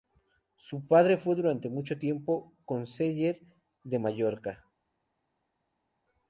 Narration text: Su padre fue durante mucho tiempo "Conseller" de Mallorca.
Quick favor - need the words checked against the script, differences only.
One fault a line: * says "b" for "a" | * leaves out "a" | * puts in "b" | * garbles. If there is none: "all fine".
all fine